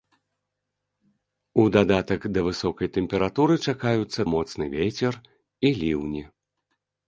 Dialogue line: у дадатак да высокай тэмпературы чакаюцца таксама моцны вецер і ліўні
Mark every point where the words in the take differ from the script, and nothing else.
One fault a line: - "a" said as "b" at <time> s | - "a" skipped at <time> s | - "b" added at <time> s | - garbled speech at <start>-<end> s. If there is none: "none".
- "таксама" skipped at 4.2 s